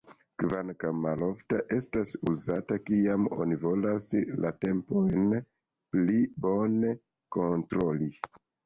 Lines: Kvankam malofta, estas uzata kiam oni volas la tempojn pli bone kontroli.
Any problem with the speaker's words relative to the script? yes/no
no